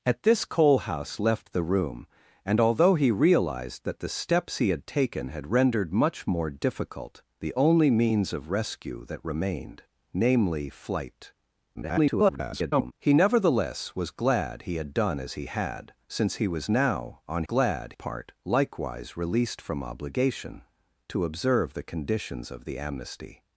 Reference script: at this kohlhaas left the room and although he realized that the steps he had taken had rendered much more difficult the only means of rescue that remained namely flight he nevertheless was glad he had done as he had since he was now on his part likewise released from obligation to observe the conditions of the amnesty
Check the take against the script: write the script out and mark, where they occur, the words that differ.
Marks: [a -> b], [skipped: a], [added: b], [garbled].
at this kohlhaas left the room and although he realized that the steps he had taken had rendered much more difficult the only means of rescue that remained namely flight [garbled] he nevertheless was glad he had done as he had since he was now on [his -> glad] part likewise released from obligation to observe the conditions of the amnesty